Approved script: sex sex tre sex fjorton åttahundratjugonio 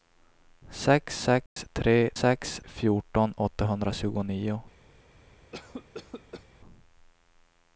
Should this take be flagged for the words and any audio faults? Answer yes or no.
yes